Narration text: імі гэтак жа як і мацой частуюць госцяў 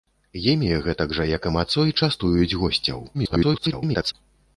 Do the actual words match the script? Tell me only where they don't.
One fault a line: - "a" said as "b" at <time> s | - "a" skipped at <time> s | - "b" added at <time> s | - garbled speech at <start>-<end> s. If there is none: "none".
- garbled speech at 3.1-4.1 s